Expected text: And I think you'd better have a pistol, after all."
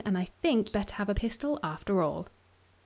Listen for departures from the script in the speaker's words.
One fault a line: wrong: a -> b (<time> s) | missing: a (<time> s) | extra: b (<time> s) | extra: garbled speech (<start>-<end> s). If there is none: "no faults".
missing: you'd (0.8 s)